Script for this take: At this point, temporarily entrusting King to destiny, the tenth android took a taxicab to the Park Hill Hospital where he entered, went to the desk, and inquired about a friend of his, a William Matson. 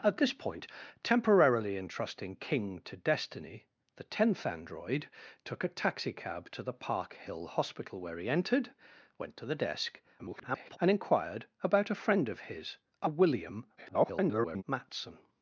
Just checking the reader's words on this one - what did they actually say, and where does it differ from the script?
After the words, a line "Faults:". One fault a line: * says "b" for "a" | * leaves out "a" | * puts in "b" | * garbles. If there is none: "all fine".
At this point, temporarily entrusting King to destiny, the tenth android took a taxicab to the Park Hill Hospital where he entered, went to the desk, [garbled] and inquired about a friend of his, a William [garbled] Matson.
Faults:
* garbles
* garbles